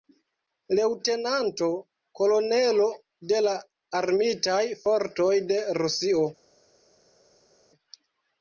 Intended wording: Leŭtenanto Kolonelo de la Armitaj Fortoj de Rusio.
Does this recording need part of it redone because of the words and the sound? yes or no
no